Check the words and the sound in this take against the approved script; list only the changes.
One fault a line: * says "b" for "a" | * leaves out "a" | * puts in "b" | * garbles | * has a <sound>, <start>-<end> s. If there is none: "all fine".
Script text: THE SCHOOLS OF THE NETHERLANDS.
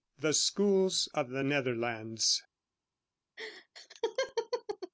* has a laugh, 3.4-4.9 s